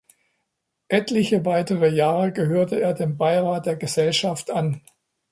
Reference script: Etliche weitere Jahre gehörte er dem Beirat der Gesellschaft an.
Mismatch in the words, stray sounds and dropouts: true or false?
false